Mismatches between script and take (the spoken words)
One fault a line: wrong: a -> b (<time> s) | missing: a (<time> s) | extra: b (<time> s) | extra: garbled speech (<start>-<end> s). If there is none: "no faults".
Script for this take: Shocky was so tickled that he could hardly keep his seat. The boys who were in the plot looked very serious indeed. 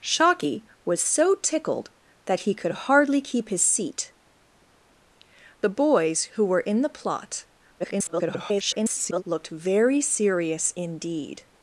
extra: garbled speech (7.8-9.2 s)